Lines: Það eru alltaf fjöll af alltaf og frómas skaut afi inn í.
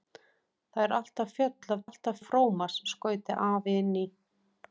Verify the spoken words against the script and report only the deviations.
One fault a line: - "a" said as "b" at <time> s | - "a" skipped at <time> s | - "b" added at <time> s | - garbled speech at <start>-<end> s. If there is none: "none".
none